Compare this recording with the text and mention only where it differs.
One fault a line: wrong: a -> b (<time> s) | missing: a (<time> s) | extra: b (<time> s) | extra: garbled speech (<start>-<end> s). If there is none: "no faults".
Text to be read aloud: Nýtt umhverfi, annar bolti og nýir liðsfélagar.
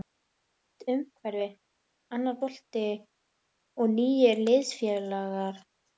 no faults